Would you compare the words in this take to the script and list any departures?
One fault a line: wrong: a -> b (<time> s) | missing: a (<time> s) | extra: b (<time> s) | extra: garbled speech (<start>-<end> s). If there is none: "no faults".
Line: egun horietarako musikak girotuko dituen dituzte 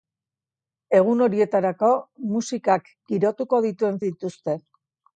no faults